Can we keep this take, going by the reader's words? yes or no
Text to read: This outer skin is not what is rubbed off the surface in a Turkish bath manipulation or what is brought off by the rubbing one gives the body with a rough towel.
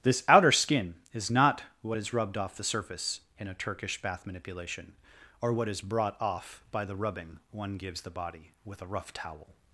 yes